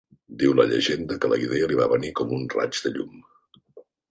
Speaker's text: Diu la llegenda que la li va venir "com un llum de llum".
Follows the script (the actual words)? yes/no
no